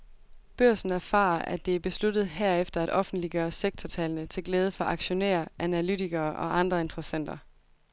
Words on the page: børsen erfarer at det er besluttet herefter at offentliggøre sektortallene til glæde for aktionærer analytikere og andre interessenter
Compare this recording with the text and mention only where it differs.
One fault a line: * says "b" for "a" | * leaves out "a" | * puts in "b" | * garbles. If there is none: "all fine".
all fine